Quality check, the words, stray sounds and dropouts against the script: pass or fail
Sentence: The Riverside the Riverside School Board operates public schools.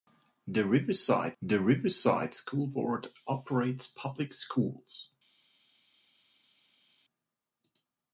pass